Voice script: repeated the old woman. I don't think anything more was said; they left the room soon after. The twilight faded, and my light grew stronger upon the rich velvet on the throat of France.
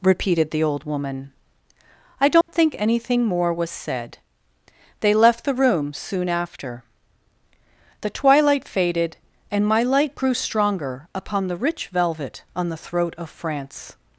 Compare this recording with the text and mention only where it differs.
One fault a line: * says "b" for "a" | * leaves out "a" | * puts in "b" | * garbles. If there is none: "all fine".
all fine